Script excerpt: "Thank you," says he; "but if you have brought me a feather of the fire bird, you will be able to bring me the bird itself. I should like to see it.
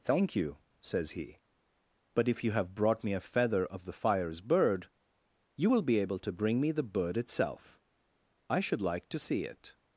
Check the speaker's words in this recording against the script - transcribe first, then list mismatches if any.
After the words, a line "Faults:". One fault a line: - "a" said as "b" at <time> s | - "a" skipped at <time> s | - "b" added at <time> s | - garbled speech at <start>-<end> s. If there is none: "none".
"Thank you," says he; "but if you have brought me a feather of the fires bird, you will be able to bring me the bird itself. I should like to see it.
Faults:
- "fire" said as "fires" at 3.9 s